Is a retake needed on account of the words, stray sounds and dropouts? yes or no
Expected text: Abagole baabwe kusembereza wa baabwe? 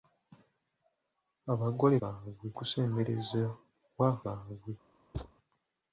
yes